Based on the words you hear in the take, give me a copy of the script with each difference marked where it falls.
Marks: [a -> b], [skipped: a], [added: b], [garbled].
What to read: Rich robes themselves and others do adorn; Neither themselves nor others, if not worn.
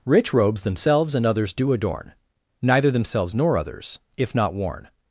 Rich robes themselves and others do adorn; Neither themselves nor others, if not worn.